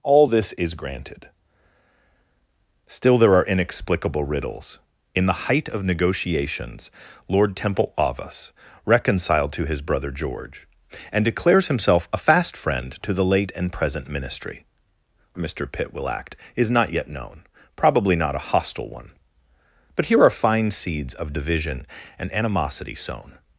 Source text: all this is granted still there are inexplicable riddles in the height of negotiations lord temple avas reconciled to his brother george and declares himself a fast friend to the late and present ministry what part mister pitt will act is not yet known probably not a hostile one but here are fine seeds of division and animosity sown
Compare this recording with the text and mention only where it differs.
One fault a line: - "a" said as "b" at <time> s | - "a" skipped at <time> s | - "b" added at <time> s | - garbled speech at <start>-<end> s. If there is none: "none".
- "what part" skipped at 14.6 s